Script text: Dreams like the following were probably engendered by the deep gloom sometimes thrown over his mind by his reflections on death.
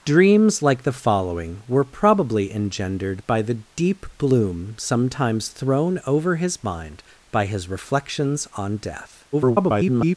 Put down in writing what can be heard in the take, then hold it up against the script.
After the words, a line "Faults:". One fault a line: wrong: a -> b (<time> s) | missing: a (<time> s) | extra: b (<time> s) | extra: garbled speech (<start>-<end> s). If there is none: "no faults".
Dreams like the following were probably engendered by the deep gloom sometimes thrown over his mind by his reflections on death. [garbled]
Faults:
extra: garbled speech (9.3-10.2 s)